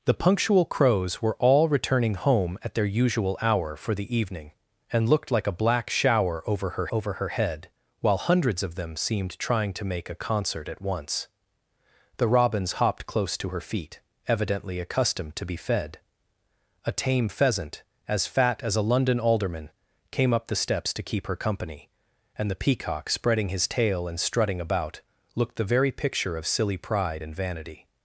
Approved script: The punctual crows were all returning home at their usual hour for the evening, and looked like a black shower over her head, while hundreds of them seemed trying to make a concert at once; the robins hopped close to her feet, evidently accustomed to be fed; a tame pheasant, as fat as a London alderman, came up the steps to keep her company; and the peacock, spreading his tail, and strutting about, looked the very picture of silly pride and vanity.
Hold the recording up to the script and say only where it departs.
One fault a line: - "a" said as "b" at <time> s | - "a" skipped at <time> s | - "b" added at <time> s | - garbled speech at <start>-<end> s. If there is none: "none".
- "over her" added at 6.9 s